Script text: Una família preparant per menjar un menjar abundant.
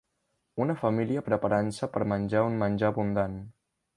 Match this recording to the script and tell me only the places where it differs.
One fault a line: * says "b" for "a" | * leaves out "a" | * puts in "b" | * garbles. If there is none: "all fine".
* puts in "se"